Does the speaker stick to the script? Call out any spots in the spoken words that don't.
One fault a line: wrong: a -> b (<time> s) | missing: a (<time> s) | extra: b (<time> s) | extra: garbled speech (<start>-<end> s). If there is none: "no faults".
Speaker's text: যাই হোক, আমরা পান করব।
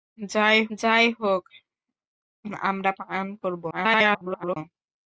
extra: যাই (0.8 s)
extra: garbled speech (3.7-4.6 s)